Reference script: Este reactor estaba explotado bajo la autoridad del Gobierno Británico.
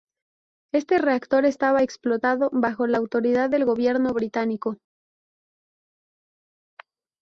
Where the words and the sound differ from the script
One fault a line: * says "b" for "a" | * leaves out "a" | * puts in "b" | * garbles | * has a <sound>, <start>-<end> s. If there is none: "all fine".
all fine